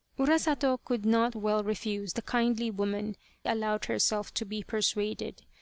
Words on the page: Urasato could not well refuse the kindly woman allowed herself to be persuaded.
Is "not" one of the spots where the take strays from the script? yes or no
no